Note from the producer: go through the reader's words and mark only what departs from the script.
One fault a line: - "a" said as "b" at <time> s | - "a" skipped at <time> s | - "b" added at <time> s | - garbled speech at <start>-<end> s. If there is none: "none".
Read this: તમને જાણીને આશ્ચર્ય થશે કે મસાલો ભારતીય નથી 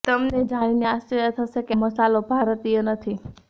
none